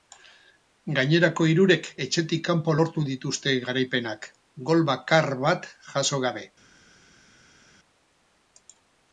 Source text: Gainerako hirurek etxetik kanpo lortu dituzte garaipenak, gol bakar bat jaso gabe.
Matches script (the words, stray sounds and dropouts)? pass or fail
pass